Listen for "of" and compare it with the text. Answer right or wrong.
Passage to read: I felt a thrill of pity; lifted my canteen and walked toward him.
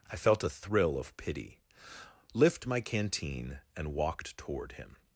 right